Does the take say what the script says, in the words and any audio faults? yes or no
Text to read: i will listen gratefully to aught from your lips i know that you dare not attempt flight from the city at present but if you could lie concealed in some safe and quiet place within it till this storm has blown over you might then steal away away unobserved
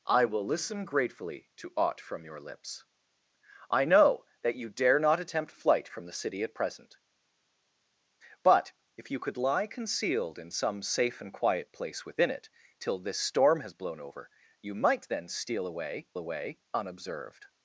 yes